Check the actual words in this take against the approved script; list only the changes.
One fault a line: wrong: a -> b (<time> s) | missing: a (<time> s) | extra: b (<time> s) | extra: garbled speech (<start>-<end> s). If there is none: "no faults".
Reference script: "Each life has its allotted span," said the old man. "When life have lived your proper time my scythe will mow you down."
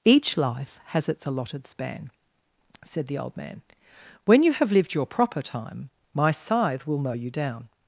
wrong: life -> you (4.4 s)